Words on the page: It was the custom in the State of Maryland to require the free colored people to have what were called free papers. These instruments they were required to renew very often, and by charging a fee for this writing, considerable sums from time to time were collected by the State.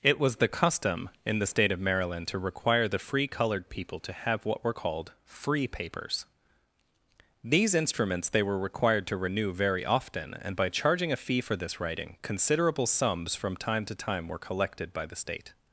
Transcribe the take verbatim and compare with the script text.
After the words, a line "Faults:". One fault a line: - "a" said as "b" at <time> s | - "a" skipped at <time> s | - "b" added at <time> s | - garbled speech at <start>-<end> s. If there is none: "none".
It was the custom in the State of Maryland to require the free colored people to have what were called free papers. These instruments they were required to renew very often, and by charging a fee for this writing, considerable sums from time to time were collected by the State.
Faults:
none